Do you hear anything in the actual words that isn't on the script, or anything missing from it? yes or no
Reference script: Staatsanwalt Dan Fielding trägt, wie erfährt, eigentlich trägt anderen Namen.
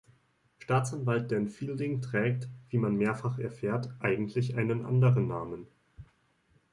yes